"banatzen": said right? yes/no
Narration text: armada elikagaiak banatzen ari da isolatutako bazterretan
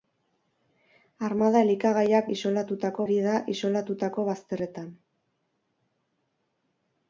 no